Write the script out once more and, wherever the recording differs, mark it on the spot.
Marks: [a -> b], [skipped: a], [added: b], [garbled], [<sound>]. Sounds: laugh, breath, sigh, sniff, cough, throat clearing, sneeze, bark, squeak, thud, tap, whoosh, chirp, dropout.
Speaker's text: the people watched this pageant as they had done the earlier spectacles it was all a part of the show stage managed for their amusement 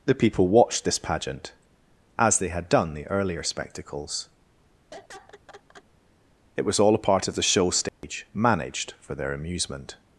the people watched this pageant as they had done the earlier spectacles [laugh] it was all a part of the show stage [dropout] managed for their amusement